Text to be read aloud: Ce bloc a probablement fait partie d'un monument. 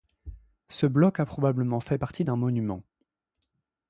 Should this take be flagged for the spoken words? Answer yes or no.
no